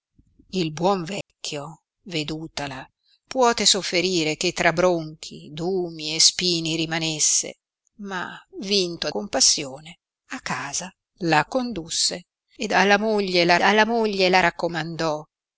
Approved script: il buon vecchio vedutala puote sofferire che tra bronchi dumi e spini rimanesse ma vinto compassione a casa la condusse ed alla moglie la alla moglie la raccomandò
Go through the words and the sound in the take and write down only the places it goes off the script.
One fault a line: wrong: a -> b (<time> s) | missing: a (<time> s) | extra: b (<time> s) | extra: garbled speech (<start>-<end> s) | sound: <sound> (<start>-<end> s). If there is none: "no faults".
sound: dropout (1.2-1.3 s)